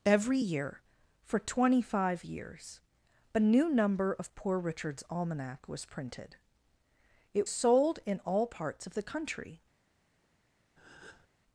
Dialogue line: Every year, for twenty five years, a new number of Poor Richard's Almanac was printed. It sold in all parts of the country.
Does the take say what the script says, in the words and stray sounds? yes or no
no